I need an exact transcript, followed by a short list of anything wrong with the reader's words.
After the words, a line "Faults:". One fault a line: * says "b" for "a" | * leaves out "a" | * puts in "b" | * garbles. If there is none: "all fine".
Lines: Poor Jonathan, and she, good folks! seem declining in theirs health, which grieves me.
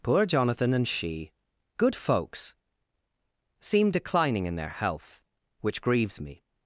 Poor Jonathan, and she, good folks! seem declining in their health, which grieves me.
Faults:
* says "their" for "theirs"